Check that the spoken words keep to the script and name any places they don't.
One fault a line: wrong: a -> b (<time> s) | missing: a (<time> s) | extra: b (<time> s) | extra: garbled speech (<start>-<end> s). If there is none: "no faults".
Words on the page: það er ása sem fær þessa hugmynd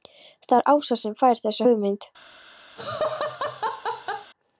no faults